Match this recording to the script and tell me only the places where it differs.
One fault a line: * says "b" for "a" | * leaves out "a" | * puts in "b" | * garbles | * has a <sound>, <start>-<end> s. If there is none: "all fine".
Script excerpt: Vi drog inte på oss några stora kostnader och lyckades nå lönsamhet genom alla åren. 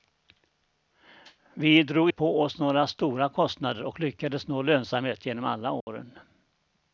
* leaves out "inte"
* has a dropout, 5.8-5.9 s